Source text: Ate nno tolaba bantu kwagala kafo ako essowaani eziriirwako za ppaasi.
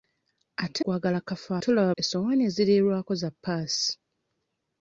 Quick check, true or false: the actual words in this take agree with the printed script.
false